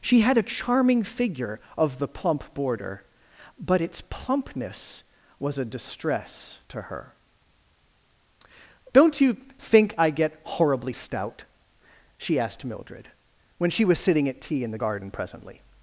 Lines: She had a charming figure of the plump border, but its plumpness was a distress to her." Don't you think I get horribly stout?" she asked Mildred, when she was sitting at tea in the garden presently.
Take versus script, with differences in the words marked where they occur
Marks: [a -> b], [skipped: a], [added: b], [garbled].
She had a charming figure of the plump border, but its plumpness was a distress to her." Don't you think I get horribly stout?" she asked Mildred, when she was sitting at tea in the garden presently.